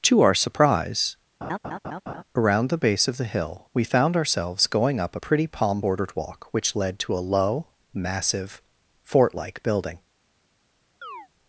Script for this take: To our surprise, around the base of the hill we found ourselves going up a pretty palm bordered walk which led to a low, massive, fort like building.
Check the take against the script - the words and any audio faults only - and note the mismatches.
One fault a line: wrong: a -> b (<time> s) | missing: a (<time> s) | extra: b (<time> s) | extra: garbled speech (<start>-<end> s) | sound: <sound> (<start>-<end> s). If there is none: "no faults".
sound: laugh (1.4-2.2 s)
sound: chirp (11.0-11.3 s)